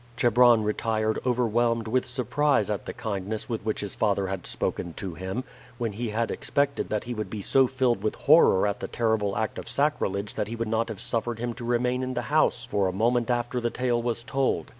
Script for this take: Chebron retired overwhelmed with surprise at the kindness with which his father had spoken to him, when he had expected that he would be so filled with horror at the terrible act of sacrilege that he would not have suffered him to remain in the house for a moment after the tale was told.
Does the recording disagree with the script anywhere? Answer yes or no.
no